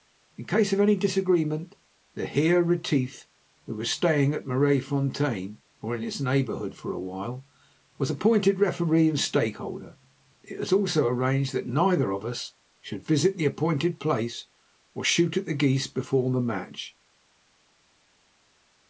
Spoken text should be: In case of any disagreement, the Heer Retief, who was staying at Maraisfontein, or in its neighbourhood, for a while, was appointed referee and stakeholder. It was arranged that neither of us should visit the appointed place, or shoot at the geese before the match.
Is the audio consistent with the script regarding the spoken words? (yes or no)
no